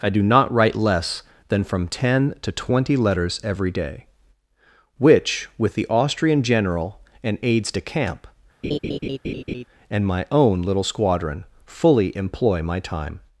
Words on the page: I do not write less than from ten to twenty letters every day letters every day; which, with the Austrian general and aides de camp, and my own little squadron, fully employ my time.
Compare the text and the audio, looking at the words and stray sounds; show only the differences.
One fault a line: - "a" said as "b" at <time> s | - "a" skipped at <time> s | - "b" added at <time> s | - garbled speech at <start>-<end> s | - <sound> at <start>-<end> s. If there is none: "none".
- "letters every day" skipped at 4.0 s
- laugh at 8.6-9.7 s